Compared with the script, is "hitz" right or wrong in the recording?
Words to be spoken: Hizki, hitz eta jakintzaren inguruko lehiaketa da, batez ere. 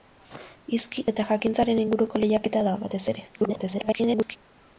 wrong